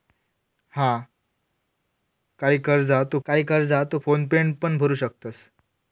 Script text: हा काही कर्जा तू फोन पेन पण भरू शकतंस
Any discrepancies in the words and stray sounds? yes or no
yes